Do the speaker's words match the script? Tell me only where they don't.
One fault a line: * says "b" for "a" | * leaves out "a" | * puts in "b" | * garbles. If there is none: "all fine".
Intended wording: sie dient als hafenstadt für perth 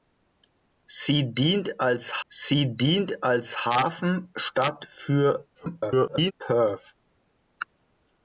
* puts in "sie dient als"
* garbles